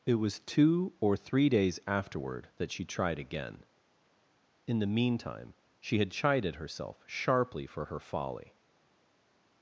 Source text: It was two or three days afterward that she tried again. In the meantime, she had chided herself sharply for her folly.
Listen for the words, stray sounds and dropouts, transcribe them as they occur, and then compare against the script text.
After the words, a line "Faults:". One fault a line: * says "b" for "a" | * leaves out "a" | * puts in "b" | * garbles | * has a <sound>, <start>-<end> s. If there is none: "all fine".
It was two or three days afterward that she tried again. In the meantime, she had chided herself sharply for her folly.
Faults:
all fine